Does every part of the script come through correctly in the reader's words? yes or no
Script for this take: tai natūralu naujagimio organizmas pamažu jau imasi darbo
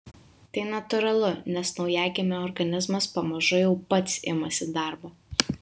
no